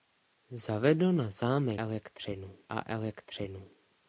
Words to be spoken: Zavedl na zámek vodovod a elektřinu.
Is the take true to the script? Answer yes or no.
no